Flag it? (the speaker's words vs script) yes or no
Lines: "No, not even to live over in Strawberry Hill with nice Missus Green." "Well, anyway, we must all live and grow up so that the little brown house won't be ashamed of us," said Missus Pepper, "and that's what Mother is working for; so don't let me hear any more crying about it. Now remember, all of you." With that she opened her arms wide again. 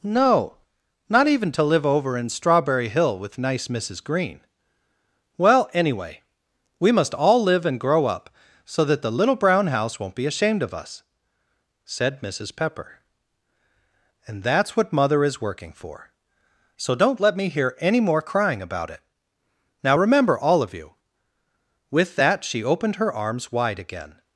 no